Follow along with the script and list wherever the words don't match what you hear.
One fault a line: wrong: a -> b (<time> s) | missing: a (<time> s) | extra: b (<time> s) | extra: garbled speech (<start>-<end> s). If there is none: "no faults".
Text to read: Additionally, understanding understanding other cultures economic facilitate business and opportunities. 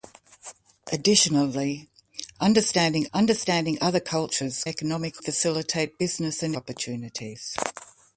no faults